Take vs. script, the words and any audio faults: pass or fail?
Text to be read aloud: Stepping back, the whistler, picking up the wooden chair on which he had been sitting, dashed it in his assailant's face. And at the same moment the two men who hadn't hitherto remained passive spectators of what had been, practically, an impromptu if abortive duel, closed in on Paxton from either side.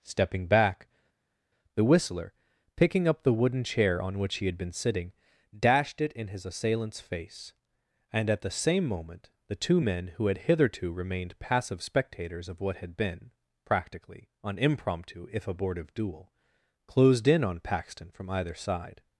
fail